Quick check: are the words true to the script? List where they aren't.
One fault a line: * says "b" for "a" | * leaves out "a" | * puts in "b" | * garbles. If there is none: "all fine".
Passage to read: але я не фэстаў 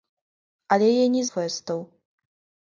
all fine